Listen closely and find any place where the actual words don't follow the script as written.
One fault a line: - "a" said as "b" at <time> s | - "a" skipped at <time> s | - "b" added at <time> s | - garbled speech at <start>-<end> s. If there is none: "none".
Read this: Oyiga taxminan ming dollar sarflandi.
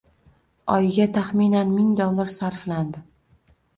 none